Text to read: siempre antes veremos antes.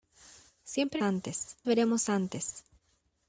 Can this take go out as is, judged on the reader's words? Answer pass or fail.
pass